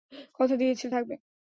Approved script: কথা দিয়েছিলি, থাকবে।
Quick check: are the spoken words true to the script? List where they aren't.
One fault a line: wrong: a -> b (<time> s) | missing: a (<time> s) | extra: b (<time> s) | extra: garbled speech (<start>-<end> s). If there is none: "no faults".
no faults